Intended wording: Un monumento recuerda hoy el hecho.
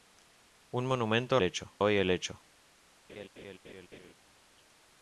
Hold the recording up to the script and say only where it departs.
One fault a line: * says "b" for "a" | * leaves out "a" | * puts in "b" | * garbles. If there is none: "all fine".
* says "hecho" for "recuerda"